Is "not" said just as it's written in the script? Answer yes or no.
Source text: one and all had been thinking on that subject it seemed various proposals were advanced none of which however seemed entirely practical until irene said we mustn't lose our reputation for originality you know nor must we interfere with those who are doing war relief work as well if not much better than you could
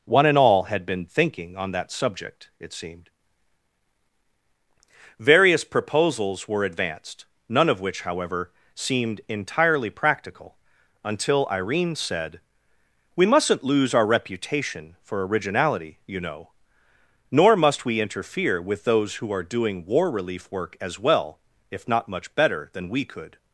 yes